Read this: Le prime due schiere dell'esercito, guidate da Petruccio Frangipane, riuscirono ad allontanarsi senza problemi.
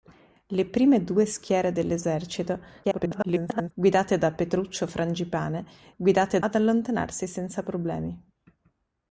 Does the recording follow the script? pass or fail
fail